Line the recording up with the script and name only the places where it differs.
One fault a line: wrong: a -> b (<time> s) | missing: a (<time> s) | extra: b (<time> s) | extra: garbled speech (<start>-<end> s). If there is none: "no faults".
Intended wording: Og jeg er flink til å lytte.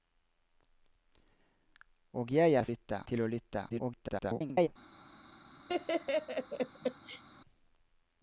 wrong: flink -> lytte (2.7 s)
extra: garbled speech (3.7-4.7 s)